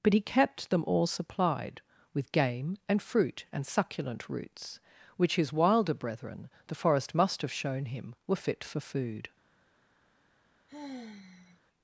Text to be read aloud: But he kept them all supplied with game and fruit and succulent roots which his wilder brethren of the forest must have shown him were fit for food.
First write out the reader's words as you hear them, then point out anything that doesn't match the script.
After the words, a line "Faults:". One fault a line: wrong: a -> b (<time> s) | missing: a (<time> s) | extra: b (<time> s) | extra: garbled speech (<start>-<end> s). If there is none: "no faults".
But he kept them all supplied with game and fruit and succulent roots which his wilder brethren the forest must have shown him were fit for food.
Faults:
missing: of (6.5 s)